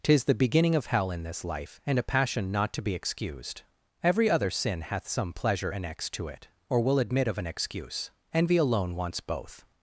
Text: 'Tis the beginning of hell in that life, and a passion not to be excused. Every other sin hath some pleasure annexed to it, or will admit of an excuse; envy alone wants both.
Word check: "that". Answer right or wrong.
wrong